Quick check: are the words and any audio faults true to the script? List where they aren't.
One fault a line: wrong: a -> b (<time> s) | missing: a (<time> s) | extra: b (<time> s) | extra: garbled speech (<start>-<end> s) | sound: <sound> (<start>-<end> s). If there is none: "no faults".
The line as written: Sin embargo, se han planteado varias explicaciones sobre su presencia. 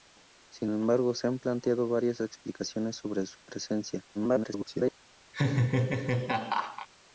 extra: garbled speech (4.1-4.9 s)
sound: laugh (5.3-6.9 s)